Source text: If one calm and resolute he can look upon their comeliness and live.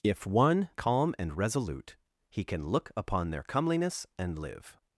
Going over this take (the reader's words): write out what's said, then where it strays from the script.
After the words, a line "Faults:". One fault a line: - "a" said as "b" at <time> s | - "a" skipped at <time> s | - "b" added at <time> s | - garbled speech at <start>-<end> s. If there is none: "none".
If one calm and resolute he can look upon their comeliness and live.
Faults:
none